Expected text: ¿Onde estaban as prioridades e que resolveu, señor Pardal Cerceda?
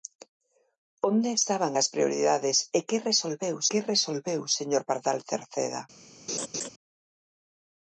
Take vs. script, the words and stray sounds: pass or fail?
fail